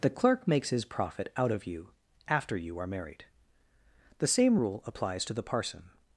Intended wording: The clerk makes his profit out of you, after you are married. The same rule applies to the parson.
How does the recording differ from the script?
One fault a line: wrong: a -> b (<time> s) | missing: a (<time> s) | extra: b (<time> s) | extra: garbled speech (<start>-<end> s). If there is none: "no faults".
no faults